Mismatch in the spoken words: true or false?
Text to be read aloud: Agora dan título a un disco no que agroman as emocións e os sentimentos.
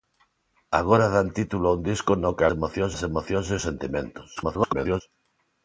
true